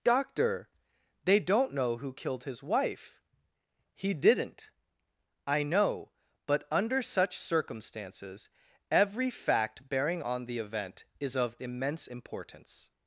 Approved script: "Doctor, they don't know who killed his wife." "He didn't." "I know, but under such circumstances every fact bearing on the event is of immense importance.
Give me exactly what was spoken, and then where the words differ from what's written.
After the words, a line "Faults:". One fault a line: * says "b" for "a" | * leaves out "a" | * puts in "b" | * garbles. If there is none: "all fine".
"Doctor, they don't know who killed his wife." "He didn't." "I know, but under such circumstances every fact bearing on the event is of immense importance.
Faults:
all fine